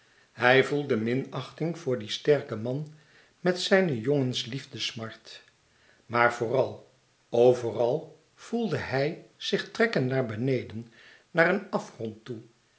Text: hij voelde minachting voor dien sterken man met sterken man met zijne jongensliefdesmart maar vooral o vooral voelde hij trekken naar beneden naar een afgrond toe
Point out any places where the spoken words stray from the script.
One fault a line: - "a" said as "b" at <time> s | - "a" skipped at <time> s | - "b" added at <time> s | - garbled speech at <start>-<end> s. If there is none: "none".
- "sterken man met" skipped at 3.6 s
- "zich" added at 9.3 s